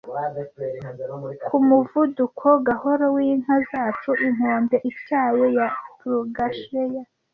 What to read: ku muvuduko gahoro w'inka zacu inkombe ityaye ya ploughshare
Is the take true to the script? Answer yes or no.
yes